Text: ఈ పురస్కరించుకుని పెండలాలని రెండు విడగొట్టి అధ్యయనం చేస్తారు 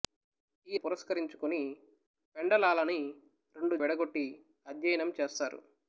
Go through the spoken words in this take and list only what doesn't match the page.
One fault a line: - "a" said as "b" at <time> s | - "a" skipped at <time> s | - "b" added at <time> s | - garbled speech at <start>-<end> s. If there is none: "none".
none